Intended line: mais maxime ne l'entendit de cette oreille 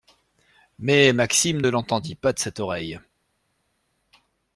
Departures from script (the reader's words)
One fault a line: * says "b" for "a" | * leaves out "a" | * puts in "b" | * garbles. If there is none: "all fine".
* puts in "pas"